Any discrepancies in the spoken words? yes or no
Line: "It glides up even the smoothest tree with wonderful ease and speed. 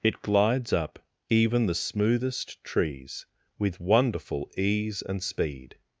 yes